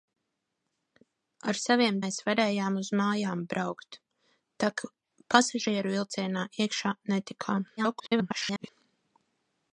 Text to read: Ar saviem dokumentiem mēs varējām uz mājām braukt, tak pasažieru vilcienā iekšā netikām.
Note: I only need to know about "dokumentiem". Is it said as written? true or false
false